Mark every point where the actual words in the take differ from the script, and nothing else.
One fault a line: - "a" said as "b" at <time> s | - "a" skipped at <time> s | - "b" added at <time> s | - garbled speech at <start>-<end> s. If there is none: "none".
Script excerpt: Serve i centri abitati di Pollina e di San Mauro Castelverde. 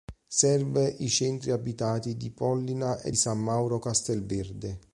- "di" skipped at 3.1 s